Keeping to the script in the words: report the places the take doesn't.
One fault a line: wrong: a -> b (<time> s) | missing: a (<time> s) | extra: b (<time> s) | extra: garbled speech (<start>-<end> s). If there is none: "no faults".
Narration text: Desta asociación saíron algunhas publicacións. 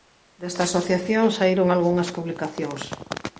no faults